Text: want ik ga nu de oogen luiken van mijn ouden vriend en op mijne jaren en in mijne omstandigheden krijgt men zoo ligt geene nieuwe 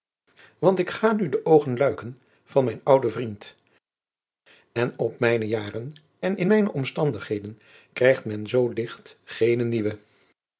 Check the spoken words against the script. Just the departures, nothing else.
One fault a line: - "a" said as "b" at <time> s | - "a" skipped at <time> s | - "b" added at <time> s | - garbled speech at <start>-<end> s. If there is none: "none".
none